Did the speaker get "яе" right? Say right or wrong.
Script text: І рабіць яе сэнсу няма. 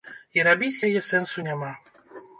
right